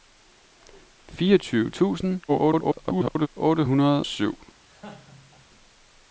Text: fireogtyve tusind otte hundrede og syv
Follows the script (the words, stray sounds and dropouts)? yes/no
no